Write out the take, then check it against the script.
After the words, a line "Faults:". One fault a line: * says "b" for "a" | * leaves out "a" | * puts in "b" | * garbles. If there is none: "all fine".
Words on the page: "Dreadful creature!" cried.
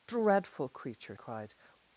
"Dreadful creature!" cried.
Faults:
all fine